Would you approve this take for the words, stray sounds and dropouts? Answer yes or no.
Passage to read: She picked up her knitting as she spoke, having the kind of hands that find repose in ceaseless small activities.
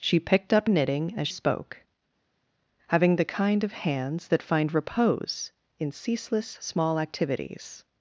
no